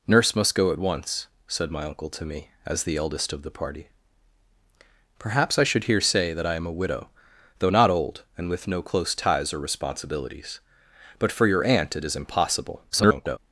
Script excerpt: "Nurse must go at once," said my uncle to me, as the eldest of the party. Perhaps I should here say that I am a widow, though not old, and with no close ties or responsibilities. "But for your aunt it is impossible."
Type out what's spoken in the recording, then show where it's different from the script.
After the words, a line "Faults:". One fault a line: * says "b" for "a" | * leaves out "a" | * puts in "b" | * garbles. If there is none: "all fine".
"Nurse must go at once," said my uncle to me, as the eldest of the party. Perhaps I should here say that I am a widow, though not old, and with no close ties or responsibilities. "But for your aunt it is impossible." [garbled]
Faults:
* garbles